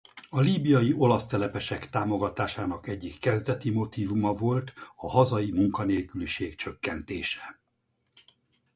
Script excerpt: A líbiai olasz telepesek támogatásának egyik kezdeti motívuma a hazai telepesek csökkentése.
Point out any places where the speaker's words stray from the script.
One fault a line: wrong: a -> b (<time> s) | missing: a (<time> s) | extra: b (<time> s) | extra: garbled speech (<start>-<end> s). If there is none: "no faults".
extra: volt (4.3 s)
wrong: telepesek -> munkanélküliség (5.5 s)